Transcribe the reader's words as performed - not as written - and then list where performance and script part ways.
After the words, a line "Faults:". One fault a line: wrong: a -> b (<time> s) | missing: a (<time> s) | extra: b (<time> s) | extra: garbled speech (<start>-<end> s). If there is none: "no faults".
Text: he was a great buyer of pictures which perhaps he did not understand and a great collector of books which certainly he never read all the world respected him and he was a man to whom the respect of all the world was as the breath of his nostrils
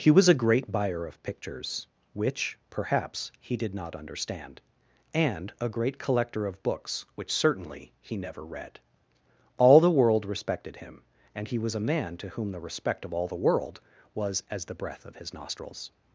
he was a great buyer of pictures which perhaps he did not understand and a great collector of books which certainly he never read all the world respected him and he was a man to whom the respect of all the world was as the breath of his nostrils
Faults:
no faults